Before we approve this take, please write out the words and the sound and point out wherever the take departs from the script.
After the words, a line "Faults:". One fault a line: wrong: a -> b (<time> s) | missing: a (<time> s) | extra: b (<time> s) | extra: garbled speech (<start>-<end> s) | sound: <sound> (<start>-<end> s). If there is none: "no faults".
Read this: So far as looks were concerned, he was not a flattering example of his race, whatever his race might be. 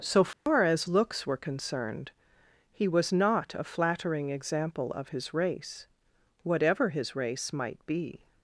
So far as looks were concerned, he was not a flattering example of his race, whatever his race might be.
Faults:
sound: dropout (0.3-0.5 s)